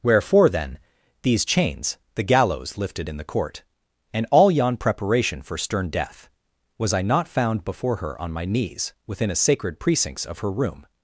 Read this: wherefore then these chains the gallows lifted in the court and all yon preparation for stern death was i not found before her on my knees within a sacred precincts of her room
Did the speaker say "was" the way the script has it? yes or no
yes